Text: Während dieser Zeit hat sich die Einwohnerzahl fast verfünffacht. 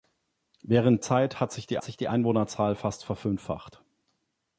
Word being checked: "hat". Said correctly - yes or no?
yes